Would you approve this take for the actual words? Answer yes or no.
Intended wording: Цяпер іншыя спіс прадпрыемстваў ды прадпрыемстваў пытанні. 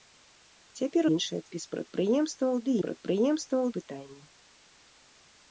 yes